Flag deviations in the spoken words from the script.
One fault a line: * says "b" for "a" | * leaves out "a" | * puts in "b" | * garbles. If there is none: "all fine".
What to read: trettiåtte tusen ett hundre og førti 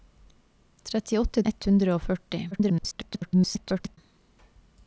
* leaves out "tusen"
* garbles